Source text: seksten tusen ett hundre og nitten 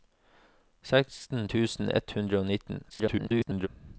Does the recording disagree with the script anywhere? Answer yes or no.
yes